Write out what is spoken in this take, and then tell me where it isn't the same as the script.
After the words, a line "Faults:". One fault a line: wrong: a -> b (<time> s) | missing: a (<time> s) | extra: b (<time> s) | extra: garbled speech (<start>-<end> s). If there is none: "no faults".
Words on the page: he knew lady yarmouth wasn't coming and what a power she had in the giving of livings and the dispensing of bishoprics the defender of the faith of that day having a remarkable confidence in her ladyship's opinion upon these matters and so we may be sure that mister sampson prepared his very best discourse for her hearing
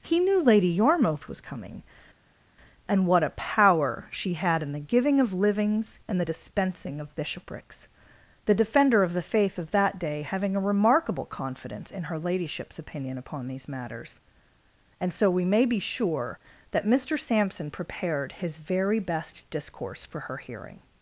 he knew lady yarmouth was coming and what a power she had in the giving of livings and the dispensing of bishoprics the defender of the faith of that day having a remarkable confidence in her ladyship's opinion upon these matters and so we may be sure that mister sampson prepared his very best discourse for her hearing
Faults:
wrong: wasn't -> was (1.3 s)